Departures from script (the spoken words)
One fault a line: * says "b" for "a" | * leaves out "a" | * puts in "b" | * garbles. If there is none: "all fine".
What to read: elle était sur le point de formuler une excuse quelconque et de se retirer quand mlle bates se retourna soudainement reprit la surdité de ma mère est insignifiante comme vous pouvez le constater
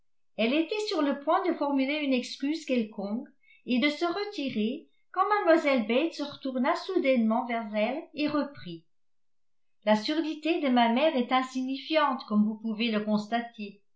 * puts in "vers elle et"